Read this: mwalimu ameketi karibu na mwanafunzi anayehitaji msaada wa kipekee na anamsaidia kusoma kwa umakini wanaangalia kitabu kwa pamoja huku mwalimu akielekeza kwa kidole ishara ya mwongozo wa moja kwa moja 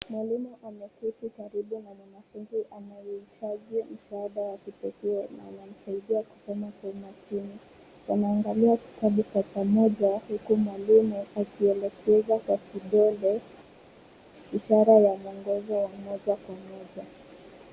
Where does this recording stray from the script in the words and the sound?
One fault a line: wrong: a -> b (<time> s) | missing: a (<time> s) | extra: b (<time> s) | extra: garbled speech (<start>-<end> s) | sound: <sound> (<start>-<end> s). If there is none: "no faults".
no faults